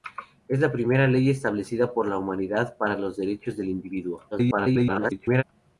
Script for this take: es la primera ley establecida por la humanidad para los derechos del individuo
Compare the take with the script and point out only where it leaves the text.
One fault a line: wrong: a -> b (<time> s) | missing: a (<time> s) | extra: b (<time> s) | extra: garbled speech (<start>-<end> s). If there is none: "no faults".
extra: garbled speech (4.3-5.4 s)